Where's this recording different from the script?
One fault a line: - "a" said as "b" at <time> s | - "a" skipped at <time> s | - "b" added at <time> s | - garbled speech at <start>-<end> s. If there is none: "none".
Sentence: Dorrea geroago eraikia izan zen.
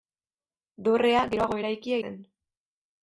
- "izan" skipped at 2.0 s